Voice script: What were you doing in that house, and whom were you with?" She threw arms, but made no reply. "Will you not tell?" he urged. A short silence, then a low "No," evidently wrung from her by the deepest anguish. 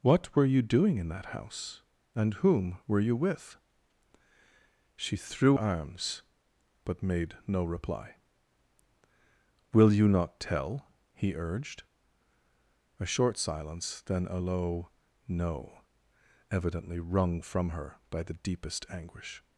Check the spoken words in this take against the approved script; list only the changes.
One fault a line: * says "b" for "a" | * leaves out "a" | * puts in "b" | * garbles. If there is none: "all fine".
all fine